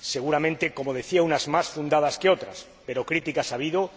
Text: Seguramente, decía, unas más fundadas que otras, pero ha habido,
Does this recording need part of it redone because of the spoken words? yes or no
yes